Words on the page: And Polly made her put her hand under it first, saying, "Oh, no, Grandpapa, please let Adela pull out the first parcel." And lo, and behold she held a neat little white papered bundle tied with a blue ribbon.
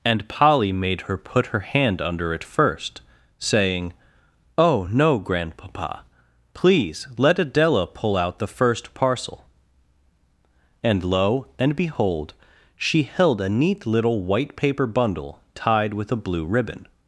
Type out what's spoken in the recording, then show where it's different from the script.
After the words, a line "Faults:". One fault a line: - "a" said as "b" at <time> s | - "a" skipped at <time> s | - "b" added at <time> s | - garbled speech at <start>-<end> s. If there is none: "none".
And Polly made her put her hand under it first, saying, "Oh, no, Grandpapa, please let Adela pull out the first parcel." And lo, and behold she held a neat little white paper bundle tied with a blue ribbon.
Faults:
- "papered" said as "paper" at 14.5 s